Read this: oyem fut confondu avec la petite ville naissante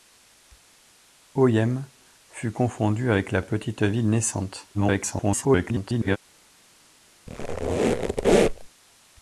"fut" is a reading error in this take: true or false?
false